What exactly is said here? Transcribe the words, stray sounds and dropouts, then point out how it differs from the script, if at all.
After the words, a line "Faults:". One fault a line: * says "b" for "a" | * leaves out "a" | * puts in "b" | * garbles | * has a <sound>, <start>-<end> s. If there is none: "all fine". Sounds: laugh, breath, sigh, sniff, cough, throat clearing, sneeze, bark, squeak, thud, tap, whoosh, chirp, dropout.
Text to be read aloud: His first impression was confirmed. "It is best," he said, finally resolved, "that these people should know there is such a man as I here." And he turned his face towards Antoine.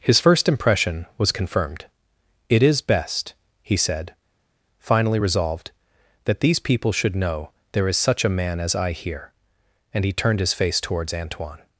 His first impression was confirmed. "It is best," he said, finally resolved, "that these people should know there is such a man as I here." And he turned his face towards Antoine.
Faults:
all fine